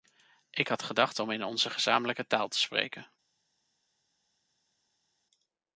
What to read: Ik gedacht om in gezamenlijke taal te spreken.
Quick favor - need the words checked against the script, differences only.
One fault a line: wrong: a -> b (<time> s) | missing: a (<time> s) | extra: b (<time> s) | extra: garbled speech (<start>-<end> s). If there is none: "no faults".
extra: had (0.7 s)
extra: onze (1.4 s)